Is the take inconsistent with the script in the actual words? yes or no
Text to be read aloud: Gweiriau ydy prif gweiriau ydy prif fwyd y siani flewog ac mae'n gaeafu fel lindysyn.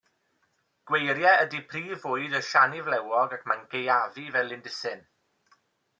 yes